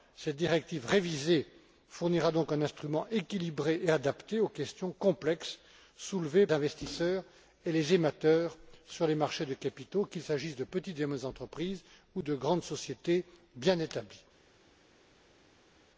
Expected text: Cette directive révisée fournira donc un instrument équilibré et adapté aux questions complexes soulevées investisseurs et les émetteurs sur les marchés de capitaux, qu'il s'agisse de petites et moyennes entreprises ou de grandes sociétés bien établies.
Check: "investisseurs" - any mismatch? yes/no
no